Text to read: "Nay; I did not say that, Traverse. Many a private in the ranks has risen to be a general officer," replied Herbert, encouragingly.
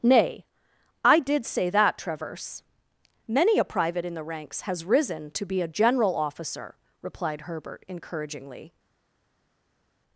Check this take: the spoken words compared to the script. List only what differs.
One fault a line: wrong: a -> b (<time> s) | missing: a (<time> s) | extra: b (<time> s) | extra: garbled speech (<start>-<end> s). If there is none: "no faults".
missing: not (1.4 s)